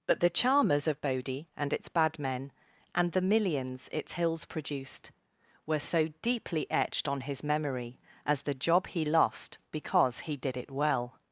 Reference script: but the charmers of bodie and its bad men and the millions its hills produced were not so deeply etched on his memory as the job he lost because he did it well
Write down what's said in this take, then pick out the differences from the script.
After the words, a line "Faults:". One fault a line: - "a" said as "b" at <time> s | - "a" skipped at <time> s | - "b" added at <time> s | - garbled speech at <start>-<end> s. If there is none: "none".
but the charmers of bodie and its bad men and the millions its hills produced were so deeply etched on his memory as the job he lost because he did it well
Faults:
- "not" skipped at 5.8 s